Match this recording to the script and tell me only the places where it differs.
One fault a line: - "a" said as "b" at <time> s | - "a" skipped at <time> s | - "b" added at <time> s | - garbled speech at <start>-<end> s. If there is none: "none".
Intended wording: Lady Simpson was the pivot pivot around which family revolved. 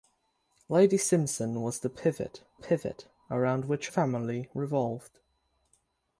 none